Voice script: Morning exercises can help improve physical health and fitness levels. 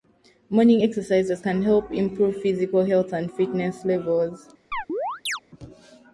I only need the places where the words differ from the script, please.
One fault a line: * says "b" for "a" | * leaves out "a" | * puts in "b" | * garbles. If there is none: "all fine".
all fine